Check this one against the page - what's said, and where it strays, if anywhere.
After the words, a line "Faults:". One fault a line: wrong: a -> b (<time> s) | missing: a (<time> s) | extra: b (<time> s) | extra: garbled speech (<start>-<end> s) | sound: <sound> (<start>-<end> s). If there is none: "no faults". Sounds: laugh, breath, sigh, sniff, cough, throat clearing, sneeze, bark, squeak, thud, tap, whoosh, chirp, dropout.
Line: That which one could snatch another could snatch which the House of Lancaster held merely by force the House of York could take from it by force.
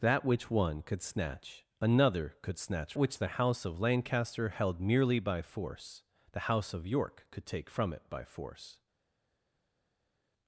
That which one could snatch another could snatch which the House of Lancaster held merely by force the House of York could take from it by force.
Faults:
no faults